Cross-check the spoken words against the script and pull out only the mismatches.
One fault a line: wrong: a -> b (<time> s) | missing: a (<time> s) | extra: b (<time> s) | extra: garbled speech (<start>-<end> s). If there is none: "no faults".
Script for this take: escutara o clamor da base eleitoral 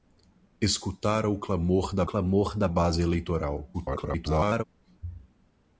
extra: clamor da (2.0 s)
extra: garbled speech (3.7-4.6 s)